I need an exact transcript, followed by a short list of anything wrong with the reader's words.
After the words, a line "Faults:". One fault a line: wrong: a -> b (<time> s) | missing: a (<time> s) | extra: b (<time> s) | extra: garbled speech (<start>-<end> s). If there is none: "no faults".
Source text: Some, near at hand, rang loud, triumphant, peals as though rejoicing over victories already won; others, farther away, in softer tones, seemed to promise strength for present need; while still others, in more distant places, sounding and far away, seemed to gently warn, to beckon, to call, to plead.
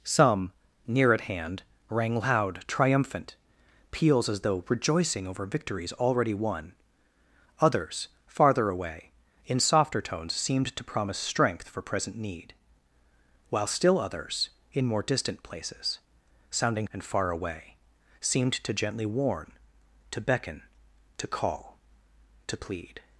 Some, near at hand, rang loud, triumphant, peals as though rejoicing over victories already won; others, farther away, in softer tones, seemed to promise strength for present need; while still others, in more distant places, sounding and far away, seemed to gently warn, to beckon, to call, to plead.
Faults:
no faults